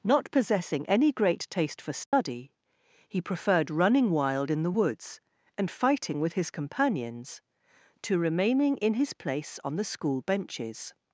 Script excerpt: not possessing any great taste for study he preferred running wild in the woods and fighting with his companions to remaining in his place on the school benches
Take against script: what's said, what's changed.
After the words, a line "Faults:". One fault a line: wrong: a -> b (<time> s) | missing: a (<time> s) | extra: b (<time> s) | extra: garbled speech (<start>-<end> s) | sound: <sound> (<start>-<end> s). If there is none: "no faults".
not possessing any great taste for study he preferred running wild in the woods and fighting with his companions to remaining in his place on the school benches
Faults:
sound: dropout (2.1-2.1 s)